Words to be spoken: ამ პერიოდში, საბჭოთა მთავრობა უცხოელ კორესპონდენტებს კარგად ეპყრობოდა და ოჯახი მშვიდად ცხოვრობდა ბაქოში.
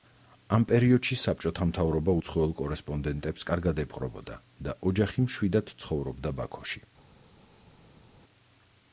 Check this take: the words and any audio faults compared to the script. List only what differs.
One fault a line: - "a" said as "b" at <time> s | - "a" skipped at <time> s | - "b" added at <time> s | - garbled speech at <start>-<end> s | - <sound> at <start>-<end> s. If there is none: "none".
none